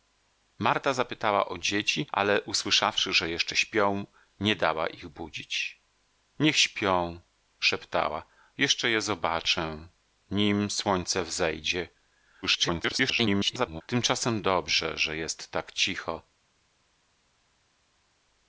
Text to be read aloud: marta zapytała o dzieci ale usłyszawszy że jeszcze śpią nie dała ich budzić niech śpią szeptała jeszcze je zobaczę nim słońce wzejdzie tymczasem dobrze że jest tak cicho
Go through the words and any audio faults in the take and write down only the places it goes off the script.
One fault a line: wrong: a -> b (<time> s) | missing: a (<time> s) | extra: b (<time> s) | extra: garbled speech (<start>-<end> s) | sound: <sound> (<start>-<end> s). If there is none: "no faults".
extra: garbled speech (12.4-13.8 s)